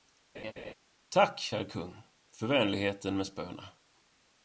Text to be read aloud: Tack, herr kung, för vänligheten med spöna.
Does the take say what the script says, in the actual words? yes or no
yes